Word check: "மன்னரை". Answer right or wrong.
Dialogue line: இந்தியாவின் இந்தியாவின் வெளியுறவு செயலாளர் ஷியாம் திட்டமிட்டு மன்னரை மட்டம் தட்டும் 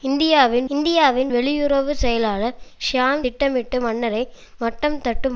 right